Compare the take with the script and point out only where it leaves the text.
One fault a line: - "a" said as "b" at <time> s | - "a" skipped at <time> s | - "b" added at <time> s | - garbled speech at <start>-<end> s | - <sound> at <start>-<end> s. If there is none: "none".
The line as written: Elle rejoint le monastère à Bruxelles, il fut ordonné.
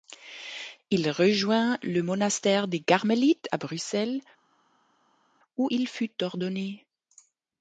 - "Elle" said as "Il" at 0.9 s
- "des Carmélites" added at 2.7 s
- "où" added at 5.6 s